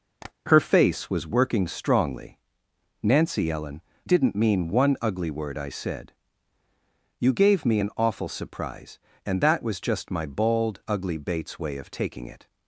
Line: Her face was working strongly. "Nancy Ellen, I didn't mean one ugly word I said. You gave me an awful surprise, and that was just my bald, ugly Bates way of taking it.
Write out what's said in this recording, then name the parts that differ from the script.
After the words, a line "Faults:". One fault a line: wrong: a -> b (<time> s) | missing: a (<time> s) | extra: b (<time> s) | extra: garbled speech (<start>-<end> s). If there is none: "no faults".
Her face was working strongly. "Nancy Ellen, didn't mean one ugly word I said. You gave me an awful surprise, and that was just my bald, ugly Bates way of taking it.
Faults:
missing: I (3.8 s)